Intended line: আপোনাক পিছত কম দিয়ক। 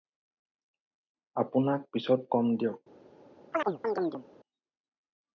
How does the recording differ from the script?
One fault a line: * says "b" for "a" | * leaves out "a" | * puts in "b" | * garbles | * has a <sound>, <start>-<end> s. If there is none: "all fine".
* has a chirp, 3.5-4.2 s